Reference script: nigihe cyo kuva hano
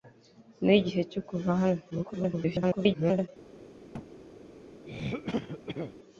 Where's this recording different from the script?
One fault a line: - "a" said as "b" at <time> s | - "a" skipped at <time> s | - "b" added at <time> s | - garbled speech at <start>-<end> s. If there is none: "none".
- garbled speech at 1.9-3.3 s